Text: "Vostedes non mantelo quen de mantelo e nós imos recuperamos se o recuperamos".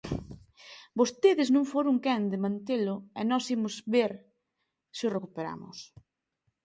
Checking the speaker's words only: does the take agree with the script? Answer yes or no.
no